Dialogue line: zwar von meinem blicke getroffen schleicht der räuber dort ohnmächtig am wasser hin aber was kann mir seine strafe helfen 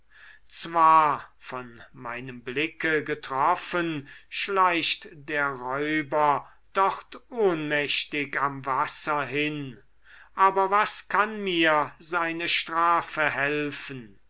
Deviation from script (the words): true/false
false